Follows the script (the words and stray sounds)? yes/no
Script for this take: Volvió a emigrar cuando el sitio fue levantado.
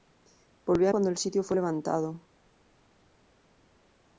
no